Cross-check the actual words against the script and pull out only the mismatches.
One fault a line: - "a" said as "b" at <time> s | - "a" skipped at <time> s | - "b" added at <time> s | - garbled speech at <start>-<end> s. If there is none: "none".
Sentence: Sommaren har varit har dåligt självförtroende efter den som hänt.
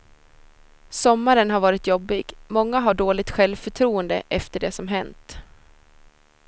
- "jobbig många" added at 1.9 s
- "den" said as "det" at 4.6 s